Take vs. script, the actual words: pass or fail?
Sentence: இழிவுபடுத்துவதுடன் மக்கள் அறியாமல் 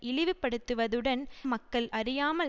pass